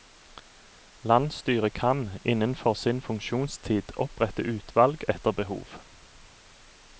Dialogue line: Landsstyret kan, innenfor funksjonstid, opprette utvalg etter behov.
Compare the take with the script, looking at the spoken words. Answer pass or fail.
fail